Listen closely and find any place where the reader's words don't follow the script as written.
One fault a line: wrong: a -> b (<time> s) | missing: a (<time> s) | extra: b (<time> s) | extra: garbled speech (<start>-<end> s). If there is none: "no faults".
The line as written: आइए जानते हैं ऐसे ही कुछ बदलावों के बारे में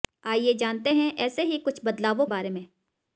missing: के (2.3 s)